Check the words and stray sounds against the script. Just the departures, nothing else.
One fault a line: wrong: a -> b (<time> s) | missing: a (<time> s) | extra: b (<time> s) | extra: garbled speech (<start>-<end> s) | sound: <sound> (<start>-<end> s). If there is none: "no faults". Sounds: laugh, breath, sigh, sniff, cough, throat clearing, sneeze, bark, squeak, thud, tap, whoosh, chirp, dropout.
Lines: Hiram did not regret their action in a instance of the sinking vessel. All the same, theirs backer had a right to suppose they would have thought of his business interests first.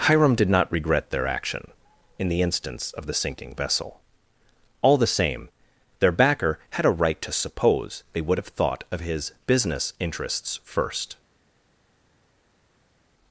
wrong: a -> the (2.3 s)
wrong: theirs -> their (6.0 s)